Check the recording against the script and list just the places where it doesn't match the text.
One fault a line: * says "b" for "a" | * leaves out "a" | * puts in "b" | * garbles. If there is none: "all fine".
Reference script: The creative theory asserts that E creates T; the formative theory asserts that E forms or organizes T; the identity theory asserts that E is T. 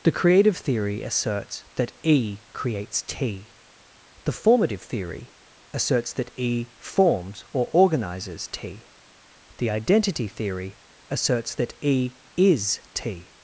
all fine